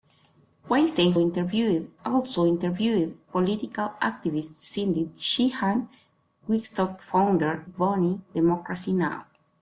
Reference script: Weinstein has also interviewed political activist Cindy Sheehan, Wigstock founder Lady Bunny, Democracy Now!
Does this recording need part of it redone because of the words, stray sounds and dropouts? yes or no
yes